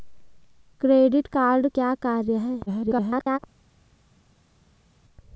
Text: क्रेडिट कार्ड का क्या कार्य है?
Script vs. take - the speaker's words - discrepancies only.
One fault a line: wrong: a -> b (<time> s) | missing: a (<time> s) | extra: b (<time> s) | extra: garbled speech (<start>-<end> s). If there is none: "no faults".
missing: का (1.7 s)
extra: garbled speech (2.7-3.4 s)